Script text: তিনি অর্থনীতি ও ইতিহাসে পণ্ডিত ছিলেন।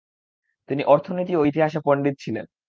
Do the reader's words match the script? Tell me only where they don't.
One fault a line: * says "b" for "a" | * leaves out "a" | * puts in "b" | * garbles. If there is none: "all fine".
all fine